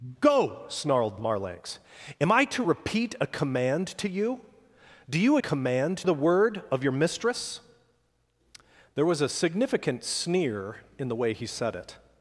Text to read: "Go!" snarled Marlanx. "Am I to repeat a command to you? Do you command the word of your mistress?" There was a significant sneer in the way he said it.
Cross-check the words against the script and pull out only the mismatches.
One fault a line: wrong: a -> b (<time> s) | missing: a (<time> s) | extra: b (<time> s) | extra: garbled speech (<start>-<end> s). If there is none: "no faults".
no faults